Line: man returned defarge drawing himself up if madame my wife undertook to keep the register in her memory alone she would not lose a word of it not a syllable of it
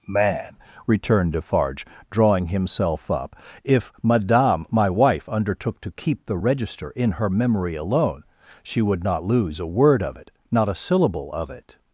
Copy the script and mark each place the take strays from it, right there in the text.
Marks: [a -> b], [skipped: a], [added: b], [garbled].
man returned defarge drawing himself up if madame my wife undertook to keep the register in her memory alone she would not lose a word of it not a syllable of it